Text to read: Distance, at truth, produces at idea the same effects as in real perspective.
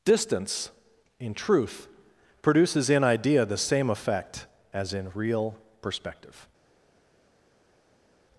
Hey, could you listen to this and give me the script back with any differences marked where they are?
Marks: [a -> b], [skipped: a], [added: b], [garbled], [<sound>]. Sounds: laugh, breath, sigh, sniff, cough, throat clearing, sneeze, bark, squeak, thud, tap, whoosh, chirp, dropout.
Distance, [at -> in] truth, produces [at -> in] idea the same [effects -> effect] as in real perspective.